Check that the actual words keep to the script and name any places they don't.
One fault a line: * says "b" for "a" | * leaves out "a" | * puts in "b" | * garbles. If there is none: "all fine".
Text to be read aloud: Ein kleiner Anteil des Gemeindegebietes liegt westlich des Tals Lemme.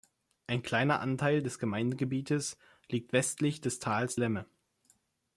all fine